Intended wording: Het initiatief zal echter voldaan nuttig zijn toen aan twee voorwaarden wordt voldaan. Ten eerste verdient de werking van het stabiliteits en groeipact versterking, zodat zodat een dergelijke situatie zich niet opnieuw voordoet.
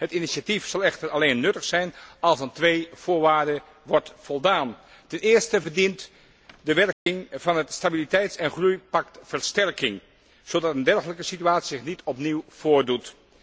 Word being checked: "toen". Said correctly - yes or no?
no